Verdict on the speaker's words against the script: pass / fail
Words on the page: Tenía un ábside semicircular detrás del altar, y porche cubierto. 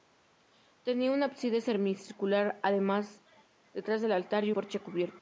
pass